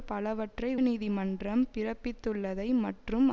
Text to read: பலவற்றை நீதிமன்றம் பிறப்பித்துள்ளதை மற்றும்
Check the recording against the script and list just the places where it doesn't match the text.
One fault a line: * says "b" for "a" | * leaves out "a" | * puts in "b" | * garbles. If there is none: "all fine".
all fine